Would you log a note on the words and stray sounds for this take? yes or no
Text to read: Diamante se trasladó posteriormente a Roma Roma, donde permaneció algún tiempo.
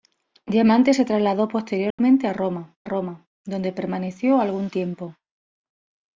yes